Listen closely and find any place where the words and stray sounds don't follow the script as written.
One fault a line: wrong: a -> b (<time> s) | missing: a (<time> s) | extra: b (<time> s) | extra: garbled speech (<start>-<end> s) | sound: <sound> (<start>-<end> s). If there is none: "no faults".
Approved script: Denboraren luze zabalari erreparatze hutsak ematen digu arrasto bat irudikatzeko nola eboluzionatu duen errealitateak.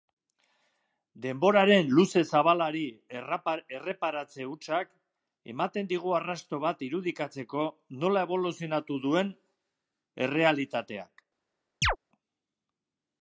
sound: chirp (11.8-12.0 s)